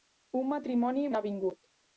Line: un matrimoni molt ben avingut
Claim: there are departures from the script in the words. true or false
true